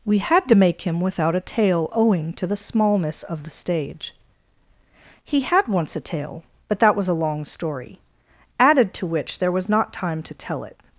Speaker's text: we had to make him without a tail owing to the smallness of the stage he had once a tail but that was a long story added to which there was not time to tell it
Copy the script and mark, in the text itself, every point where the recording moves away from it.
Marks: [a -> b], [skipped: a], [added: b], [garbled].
we had to make him without a tail owing to the smallness of the stage he had once a tail but that was a long story added to which there was not time to tell it